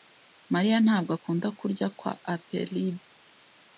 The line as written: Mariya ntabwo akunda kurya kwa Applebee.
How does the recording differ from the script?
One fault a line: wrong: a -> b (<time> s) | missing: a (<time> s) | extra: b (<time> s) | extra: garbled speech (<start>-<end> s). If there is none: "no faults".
no faults